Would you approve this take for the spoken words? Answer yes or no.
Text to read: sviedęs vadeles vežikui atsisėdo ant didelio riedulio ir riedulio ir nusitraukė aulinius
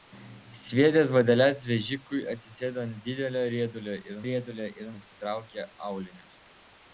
yes